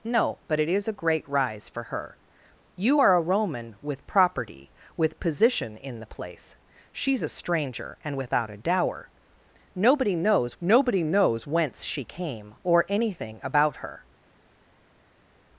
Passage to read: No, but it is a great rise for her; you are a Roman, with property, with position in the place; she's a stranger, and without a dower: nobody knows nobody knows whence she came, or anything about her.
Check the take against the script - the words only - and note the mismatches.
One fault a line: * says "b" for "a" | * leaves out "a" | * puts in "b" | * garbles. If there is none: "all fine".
all fine